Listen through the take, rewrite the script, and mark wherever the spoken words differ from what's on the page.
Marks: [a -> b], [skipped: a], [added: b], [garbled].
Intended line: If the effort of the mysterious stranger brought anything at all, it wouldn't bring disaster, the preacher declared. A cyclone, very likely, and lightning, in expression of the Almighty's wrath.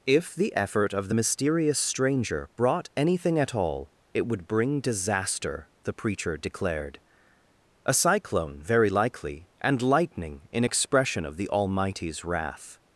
If the effort of the mysterious stranger brought anything at all, it [wouldn't -> would] bring disaster, the preacher declared. A cyclone, very likely, and lightning, in expression of the Almighty's wrath.